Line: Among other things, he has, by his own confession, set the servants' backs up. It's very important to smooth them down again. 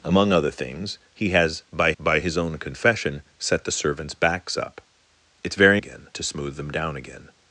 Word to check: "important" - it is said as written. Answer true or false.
false